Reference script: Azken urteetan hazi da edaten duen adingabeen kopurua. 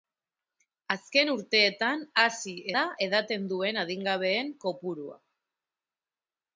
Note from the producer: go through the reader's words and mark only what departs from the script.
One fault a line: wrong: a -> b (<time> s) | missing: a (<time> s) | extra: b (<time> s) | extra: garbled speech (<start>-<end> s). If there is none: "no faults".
no faults